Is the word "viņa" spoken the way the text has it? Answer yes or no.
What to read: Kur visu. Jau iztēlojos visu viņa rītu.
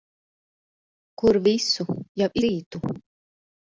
no